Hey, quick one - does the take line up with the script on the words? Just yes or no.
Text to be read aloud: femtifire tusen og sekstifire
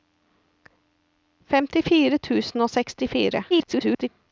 no